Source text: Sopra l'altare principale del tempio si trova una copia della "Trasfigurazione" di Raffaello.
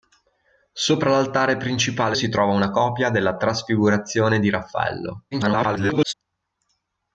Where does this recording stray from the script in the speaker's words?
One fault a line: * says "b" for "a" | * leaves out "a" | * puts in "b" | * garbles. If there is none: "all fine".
* leaves out "del tempio"
* garbles